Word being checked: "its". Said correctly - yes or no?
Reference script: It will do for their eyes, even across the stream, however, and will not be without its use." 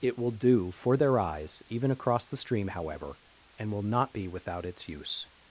yes